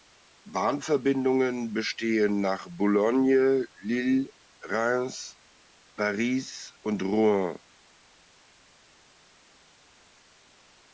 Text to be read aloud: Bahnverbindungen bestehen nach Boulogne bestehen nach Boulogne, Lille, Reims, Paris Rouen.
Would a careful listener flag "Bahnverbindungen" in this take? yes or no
no